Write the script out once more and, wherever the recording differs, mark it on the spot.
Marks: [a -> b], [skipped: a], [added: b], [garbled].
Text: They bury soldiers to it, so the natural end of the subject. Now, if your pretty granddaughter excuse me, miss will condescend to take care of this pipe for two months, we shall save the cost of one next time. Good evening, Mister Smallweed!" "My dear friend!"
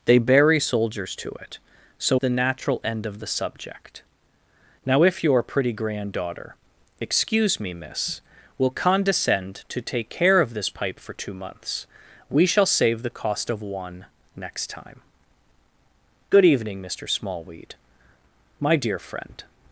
They bury soldiers to it, so the natural end of the subject. Now, if your pretty granddaughter excuse me, miss will condescend to take care of this pipe for two months, we shall save the cost of one next time. Good evening, Mister Smallweed!" "My dear friend!"